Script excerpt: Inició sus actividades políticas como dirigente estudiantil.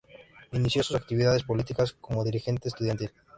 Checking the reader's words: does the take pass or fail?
pass